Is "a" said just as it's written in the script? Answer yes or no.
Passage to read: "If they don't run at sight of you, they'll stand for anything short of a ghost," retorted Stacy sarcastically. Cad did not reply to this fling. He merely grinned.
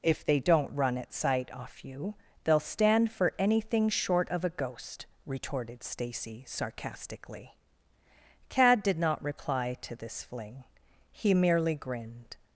yes